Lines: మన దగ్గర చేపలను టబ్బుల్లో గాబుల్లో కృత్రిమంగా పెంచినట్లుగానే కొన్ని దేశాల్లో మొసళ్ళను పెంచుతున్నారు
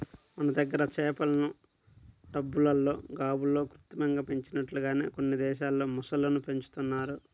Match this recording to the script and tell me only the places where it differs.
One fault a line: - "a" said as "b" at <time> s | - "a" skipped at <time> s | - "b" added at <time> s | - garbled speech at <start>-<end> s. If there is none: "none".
none